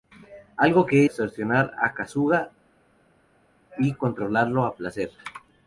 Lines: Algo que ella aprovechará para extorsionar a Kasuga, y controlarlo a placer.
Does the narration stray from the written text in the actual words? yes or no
yes